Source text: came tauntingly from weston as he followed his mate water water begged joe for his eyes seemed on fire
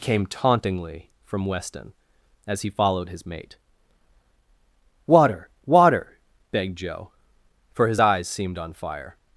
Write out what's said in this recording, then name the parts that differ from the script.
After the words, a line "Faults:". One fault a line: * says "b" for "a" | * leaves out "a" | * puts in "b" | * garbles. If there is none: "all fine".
came tauntingly from weston as he followed his mate water water begged joe for his eyes seemed on fire
Faults:
all fine